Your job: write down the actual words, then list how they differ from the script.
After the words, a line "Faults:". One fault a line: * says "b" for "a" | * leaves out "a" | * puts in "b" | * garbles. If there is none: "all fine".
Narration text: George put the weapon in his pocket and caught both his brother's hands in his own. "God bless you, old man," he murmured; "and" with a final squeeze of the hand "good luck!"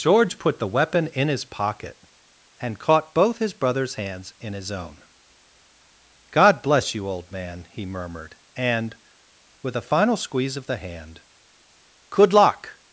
George put the weapon in his pocket and caught both his brother's hands in his own. "God bless you, old man," he murmured; "and" with a final squeeze of the hand "good luck!"
Faults:
all fine